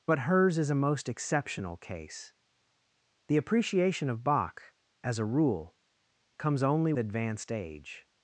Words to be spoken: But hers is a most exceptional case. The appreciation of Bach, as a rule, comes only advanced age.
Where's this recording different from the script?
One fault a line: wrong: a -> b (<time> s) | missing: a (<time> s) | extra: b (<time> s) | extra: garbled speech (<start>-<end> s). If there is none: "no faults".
no faults